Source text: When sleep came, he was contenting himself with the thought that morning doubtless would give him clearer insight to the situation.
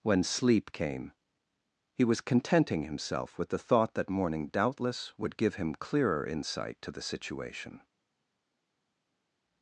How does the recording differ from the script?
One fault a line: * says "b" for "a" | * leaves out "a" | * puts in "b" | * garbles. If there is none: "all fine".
all fine